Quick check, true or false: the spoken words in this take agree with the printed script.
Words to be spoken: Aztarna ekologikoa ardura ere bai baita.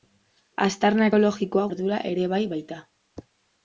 true